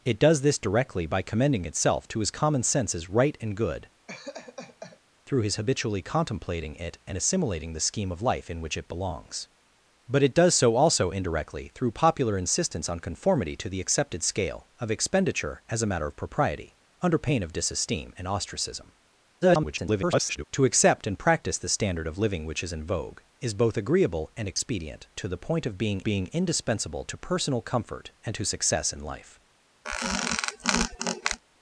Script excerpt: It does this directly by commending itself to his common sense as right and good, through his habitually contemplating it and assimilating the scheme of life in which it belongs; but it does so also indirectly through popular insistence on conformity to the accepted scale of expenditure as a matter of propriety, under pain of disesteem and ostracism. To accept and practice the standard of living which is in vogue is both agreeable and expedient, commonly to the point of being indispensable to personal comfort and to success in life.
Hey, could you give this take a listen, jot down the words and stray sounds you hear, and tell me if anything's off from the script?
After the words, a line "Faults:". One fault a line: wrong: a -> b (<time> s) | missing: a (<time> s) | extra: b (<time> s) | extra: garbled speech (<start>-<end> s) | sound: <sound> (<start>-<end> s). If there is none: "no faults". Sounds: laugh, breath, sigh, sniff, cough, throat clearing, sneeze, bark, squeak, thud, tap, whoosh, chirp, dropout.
It does this directly by commending itself to his common sense as right and good, through his habitually contemplating it and assimilating the scheme of life in which it belongs; but it does so also indirectly through popular insistence on conformity to the accepted scale of expenditure as a matter of propriety, under pain of disesteem and ostracism. [garbled] To accept and practice the standard of living which is in vogue is both agreeable and expedient, to the point of being being indispensable to personal comfort and to success in life.
Faults:
sound: laugh (4.1-5.0 s)
extra: garbled speech (19.4-20.4 s)
missing: commonly (25.1 s)
extra: being (26.0 s)
sound: squeak (29.8-31.4 s)